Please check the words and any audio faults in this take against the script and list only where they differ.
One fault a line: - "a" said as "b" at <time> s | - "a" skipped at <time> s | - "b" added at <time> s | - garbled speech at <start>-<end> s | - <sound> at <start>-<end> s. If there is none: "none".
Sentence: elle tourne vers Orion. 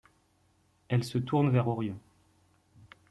- "se" added at 1.0 s